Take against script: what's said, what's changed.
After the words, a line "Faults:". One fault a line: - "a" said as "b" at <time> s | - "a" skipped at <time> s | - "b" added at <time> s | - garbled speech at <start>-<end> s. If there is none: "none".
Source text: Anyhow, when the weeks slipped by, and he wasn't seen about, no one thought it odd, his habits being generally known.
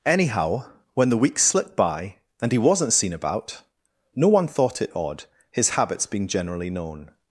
Anyhow, when the weeks slipped by, and he wasn't seen about, no one thought it odd, his habits being generally known.
Faults:
none